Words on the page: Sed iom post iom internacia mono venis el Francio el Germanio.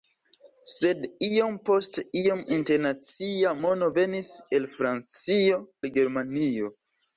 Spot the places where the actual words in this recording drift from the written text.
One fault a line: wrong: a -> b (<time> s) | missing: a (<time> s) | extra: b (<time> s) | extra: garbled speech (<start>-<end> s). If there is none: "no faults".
no faults